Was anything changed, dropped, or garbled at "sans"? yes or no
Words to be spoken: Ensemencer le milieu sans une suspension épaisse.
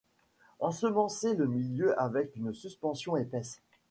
yes